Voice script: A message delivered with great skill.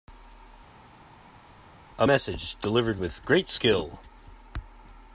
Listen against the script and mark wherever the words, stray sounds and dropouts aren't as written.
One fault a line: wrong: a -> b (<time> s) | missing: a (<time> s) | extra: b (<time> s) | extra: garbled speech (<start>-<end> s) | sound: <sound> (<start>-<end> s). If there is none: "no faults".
no faults